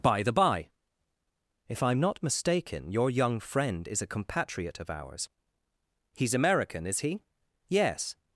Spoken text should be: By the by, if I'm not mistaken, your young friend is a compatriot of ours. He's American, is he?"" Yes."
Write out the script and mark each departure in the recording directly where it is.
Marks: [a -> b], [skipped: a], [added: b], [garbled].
By the by, if I'm not mistaken, your young friend is a compatriot of ours. He's American, is he?"" Yes."